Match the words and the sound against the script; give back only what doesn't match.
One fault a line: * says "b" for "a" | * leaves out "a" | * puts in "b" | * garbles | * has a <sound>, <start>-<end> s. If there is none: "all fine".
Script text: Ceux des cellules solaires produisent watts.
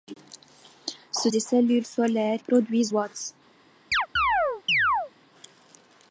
* has a chirp, 3.9-5.1 s